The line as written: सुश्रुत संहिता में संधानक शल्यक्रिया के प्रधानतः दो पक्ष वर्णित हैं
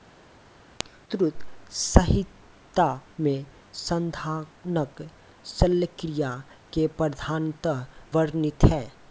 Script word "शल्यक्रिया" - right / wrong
right